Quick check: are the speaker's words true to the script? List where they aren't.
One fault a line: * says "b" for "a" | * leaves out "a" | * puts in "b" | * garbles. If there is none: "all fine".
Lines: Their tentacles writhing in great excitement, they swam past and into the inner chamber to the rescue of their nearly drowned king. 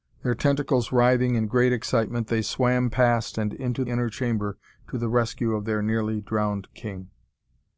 * leaves out "the"